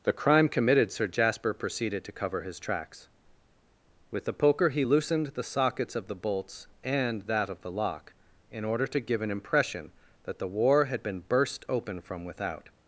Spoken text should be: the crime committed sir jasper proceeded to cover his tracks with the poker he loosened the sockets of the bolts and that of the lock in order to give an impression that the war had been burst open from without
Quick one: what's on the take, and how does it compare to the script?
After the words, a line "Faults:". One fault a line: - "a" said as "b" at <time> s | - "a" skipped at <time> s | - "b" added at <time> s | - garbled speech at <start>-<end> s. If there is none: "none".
the crime committed sir jasper proceeded to cover his tracks with the poker he loosened the sockets of the bolts and that of the lock in order to give an impression that the war had been burst open from without
Faults:
none